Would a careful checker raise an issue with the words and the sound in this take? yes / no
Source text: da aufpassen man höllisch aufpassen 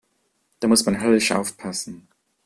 yes